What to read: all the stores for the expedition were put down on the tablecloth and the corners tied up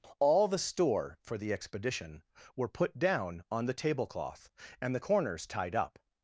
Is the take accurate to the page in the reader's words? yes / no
no